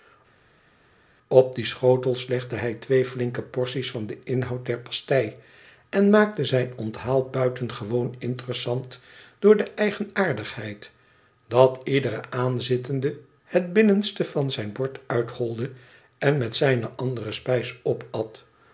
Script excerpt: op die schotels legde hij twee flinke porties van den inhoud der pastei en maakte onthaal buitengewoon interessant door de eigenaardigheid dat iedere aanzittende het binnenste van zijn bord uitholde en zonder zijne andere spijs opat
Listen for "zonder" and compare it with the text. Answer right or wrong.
wrong